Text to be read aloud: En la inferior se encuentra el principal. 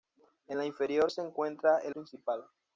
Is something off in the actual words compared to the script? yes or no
no